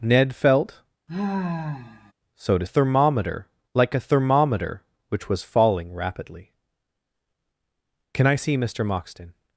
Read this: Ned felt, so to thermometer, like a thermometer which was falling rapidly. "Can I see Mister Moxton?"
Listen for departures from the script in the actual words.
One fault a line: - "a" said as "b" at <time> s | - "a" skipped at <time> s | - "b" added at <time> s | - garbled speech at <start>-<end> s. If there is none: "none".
none